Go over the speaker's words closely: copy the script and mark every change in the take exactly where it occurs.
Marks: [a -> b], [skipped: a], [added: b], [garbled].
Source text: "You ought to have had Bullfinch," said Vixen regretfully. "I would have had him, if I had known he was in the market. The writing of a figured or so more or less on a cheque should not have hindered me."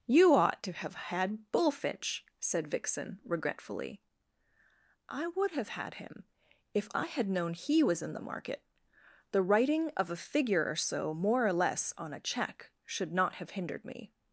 "You ought to have had Bullfinch," said Vixen regretfully. "I would have had him, if I had known he was in the market. The writing of a [figured -> figure] or so more or less on a cheque should not have hindered me."